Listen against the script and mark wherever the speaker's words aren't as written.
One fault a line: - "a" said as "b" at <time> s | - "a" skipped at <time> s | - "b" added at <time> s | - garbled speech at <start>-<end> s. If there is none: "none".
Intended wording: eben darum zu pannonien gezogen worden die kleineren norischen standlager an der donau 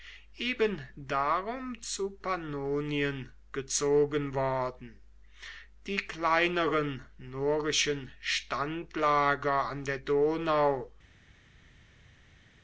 none